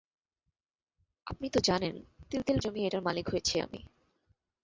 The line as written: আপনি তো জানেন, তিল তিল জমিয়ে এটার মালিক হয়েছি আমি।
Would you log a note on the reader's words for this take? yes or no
no